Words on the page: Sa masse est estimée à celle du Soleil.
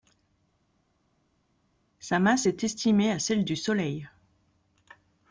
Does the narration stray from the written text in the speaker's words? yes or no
no